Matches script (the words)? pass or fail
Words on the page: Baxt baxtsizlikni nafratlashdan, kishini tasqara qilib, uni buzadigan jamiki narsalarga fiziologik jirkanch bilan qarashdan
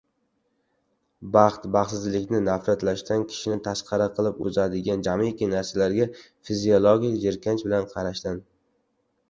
fail